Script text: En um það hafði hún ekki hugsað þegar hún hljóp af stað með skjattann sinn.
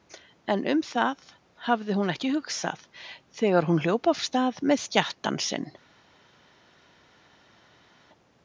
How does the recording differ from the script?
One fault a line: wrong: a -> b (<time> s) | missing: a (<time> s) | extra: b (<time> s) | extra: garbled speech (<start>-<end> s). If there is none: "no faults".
no faults